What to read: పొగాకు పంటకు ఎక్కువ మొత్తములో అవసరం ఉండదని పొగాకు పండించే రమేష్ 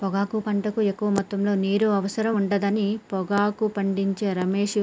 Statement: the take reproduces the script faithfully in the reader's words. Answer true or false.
false